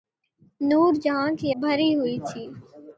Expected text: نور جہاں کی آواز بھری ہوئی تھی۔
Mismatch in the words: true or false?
true